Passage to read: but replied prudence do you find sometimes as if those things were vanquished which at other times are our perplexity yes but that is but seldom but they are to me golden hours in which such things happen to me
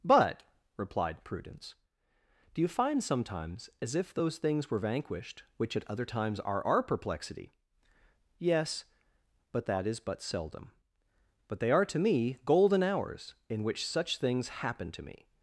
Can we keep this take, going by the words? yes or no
yes